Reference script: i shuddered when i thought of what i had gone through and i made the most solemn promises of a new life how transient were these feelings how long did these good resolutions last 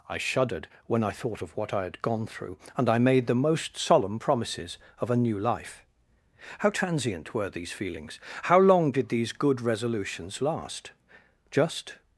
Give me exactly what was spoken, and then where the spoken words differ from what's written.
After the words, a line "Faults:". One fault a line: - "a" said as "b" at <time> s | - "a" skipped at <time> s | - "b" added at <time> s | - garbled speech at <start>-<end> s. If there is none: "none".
i shuddered when i thought of what i had gone through and i made the most solemn promises of a new life how transient were these feelings how long did these good resolutions last just
Faults:
- "just" added at 11.5 s